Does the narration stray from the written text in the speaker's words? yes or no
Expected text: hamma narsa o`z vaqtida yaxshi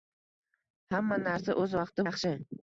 no